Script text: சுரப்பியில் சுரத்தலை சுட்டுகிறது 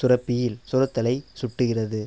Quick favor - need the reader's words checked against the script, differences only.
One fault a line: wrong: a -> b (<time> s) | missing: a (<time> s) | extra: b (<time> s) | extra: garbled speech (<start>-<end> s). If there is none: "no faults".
no faults